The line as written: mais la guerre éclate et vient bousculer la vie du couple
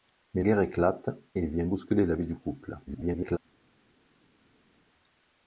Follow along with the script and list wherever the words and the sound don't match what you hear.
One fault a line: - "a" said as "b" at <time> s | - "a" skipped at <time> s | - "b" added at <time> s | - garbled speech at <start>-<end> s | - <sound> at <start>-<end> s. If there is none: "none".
- "la" skipped at 0.4 s
- garbled speech at 2.9-3.4 s